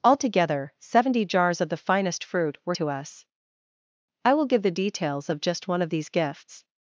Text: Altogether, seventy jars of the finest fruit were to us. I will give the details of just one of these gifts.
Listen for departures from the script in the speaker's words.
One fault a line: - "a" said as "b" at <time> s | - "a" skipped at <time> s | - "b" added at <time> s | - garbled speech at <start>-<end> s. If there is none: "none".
none